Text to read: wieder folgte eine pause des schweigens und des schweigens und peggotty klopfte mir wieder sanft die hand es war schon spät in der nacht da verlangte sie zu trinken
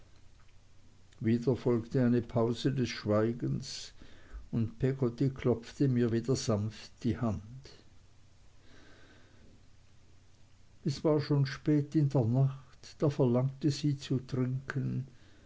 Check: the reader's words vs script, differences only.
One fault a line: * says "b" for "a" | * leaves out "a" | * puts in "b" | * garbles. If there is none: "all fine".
* leaves out "des schweigens und"